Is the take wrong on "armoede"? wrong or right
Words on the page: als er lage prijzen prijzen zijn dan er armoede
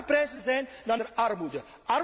right